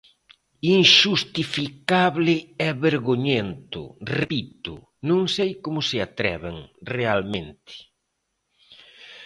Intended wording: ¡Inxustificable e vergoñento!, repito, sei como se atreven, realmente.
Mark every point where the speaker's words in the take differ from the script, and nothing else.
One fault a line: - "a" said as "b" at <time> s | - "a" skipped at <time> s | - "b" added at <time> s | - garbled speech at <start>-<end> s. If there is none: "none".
- "non" added at 5.1 s